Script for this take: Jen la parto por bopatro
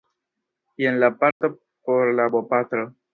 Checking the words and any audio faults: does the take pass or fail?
fail